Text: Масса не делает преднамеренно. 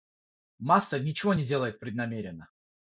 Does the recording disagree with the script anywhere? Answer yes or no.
yes